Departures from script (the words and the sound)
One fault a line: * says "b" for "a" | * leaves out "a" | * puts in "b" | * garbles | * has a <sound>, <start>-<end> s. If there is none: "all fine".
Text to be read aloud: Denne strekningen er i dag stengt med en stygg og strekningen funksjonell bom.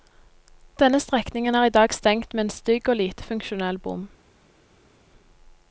* says "lite" for "strekningen"